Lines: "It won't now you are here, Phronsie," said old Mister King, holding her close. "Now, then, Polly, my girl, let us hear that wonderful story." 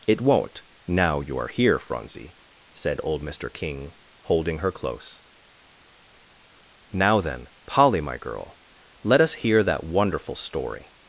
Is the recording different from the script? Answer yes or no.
no